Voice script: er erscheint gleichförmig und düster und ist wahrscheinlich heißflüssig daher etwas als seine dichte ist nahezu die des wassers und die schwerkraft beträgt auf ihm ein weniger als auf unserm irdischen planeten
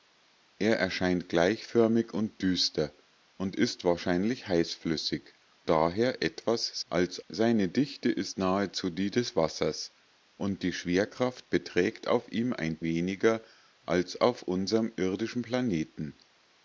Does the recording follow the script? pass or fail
pass